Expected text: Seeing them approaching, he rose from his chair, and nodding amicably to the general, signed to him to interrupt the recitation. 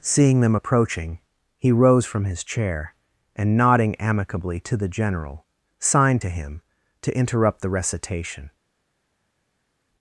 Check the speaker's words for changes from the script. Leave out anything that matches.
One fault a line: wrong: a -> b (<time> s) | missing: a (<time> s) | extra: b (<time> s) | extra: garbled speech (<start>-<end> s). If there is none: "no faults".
no faults